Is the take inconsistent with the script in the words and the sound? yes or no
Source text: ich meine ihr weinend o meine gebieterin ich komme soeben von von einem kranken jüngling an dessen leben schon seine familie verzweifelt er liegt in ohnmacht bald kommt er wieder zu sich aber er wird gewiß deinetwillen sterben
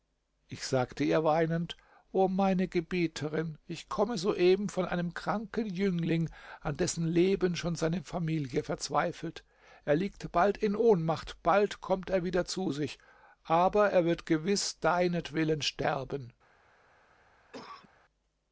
yes